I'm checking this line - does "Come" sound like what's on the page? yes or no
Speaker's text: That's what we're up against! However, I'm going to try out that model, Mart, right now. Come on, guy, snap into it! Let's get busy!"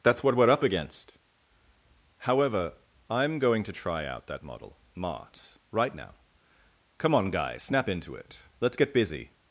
yes